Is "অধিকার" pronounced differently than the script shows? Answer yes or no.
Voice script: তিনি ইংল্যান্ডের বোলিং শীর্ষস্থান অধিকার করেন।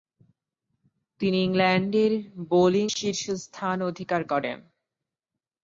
no